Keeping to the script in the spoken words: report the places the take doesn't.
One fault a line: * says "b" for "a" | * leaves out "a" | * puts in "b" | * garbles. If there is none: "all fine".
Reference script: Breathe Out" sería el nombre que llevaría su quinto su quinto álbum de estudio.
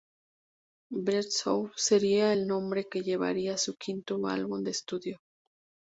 * leaves out "su quinto"